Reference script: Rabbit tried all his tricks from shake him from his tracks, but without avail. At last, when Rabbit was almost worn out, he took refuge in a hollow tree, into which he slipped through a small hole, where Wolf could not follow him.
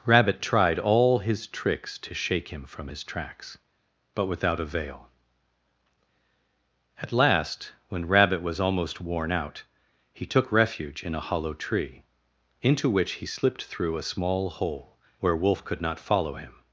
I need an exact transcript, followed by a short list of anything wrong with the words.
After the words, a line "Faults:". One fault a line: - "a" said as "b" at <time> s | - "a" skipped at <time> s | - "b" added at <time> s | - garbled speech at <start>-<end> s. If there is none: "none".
Rabbit tried all his tricks to shake him from his tracks, but without avail. At last, when Rabbit was almost worn out, he took refuge in a hollow tree, into which he slipped through a small hole, where Wolf could not follow him.
Faults:
- "from" said as "to" at 2.0 s